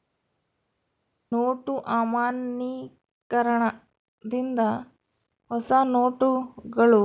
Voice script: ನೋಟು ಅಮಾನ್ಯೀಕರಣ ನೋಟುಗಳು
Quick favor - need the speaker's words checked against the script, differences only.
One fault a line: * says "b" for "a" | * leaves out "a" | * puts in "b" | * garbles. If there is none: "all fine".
* puts in "ದಿಂದ ಹೊಸ"